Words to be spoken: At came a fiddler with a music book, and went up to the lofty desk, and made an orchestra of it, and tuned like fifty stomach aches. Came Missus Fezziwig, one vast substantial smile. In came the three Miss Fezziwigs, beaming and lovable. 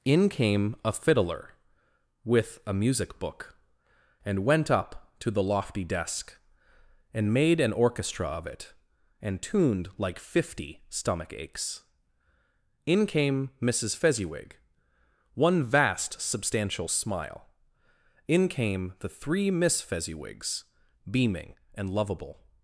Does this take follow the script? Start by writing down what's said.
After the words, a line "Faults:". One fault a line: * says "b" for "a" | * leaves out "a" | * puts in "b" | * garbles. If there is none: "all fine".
In came a fiddler with a music book, and went up to the lofty desk, and made an orchestra of it, and tuned like fifty stomach aches. In came Missus Fezziwig, one vast substantial smile. In came the three Miss Fezziwigs, beaming and lovable.
Faults:
* says "In" for "At"
* puts in "In"